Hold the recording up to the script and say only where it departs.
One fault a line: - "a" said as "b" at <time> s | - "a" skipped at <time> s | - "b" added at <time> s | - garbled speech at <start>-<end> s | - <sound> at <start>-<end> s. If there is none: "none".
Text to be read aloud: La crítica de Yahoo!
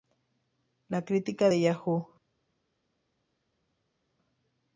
none